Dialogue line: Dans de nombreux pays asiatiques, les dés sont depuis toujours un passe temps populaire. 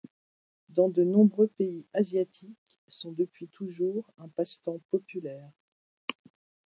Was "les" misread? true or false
true